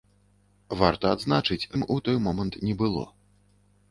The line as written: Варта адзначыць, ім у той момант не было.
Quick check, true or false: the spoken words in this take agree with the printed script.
true